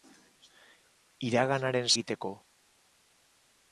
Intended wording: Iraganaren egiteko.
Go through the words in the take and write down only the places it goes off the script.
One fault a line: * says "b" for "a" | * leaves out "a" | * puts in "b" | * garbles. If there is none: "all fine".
all fine